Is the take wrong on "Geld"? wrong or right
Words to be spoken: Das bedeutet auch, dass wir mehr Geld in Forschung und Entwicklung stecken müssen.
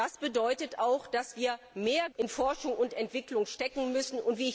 wrong